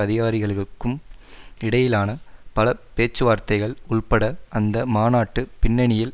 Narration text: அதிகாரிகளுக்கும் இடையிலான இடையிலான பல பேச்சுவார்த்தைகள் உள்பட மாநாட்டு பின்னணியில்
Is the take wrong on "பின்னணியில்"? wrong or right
right